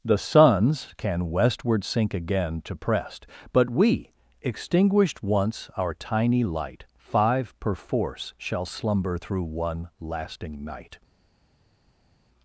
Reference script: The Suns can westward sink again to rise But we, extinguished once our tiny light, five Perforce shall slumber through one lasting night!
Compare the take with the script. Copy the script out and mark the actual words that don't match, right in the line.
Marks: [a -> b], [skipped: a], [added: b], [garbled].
The Suns can westward sink again to [rise -> prest] But we, extinguished once our tiny light, five Perforce shall slumber through one lasting night!